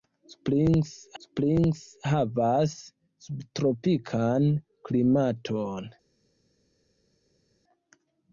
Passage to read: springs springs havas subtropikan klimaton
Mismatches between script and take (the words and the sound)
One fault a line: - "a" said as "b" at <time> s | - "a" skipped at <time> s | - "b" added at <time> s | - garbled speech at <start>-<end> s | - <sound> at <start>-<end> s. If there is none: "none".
none